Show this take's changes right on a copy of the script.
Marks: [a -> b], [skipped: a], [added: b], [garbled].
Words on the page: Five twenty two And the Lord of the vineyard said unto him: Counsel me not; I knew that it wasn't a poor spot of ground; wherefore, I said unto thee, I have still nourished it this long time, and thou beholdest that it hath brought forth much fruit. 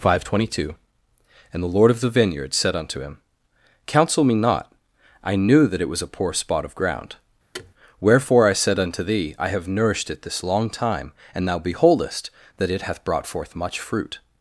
Five twenty two And the Lord of the vineyard said unto him: Counsel me not; I knew that it [wasn't -> was] a poor spot of ground; wherefore, I said unto thee, I have [skipped: still] nourished it this long time, and thou beholdest that it hath brought forth much fruit.